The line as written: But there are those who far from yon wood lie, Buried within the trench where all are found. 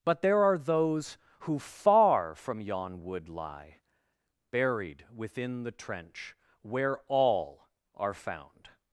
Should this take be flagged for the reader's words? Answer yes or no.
no